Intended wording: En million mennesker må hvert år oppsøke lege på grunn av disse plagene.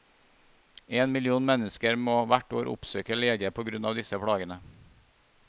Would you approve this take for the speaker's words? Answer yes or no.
yes